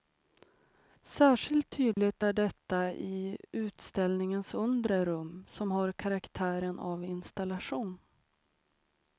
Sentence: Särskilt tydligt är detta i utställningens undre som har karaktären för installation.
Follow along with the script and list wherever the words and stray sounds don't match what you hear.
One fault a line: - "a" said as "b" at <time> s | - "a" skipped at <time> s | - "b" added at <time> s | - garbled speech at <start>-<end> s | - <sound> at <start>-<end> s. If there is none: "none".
- dropout at 1.9-2.0 s
- "rum" added at 5.1 s
- "för" said as "av" at 6.8 s